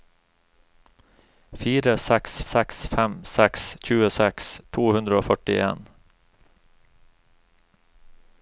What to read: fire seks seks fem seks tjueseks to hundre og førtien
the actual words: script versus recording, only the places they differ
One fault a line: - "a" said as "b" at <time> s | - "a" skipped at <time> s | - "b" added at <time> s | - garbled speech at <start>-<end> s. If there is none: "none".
none